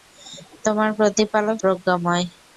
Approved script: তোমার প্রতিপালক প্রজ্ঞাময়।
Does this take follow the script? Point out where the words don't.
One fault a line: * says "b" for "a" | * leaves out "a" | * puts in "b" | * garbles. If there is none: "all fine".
all fine